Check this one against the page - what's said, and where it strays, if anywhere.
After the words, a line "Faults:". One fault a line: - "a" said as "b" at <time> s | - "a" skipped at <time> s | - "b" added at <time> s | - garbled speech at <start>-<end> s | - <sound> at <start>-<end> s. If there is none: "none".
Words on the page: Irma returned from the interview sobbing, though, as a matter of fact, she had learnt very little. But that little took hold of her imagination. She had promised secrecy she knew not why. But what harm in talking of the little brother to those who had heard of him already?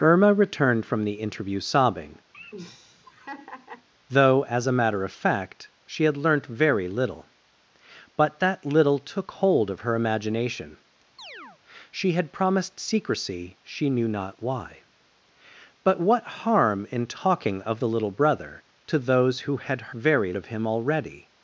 Irma returned from the interview sobbing, though, as a matter of fact, she had learnt very little. But that little took hold of her imagination. She had promised secrecy she knew not why. But what harm in talking of the little brother to those who had very of him already?
Faults:
- laugh at 2.3-3.9 s
- chirp at 11.2-11.6 s
- "heard" said as "very" at 19.9 s